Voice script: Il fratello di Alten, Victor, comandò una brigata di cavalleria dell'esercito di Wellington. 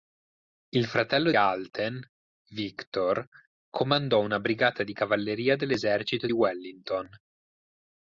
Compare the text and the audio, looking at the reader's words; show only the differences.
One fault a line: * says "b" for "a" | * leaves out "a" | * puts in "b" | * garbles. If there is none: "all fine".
* leaves out "di"
* leaves out "di"